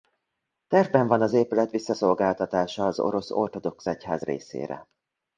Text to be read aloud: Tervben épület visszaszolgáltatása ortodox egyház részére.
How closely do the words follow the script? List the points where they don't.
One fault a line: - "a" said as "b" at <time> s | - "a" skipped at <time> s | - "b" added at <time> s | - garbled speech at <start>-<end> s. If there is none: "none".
- "van az" added at 1.1 s
- "az orosz" added at 2.9 s